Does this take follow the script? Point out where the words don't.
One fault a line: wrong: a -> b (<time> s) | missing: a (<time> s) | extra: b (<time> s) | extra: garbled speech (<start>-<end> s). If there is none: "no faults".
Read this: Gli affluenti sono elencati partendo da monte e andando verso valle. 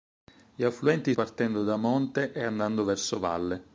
missing: sono elencati (1.1 s)